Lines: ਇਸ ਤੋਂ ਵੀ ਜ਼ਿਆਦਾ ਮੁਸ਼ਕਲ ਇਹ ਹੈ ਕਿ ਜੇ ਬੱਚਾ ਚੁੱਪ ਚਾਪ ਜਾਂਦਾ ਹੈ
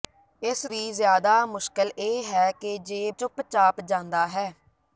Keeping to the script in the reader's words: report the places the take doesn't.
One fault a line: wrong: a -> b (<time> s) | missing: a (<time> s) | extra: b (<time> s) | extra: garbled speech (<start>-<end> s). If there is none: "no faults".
missing: ਤੋਂ (0.7 s)
missing: ਬੱਚਾ (3.1 s)